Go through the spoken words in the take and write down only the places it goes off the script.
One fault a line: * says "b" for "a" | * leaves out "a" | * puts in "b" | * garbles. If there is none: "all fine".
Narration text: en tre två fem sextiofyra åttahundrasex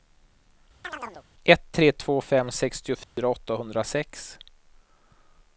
* says "ett" for "en"